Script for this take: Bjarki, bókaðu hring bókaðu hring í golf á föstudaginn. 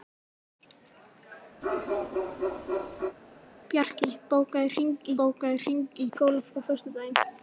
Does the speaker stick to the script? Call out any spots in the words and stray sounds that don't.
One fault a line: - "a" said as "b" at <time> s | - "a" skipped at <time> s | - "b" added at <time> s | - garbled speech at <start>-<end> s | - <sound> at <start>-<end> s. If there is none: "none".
- bark at 1.6-3.2 s